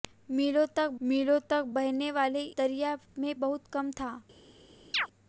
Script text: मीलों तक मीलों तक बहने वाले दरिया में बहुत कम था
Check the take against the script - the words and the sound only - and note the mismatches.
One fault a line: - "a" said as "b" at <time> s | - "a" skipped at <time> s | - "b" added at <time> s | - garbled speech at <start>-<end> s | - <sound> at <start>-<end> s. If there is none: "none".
- chirp at 4.9-5.1 s